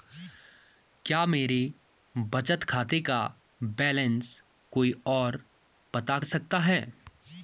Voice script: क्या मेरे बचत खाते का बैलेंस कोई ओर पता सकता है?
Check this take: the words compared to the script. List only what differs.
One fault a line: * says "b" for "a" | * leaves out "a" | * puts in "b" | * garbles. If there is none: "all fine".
all fine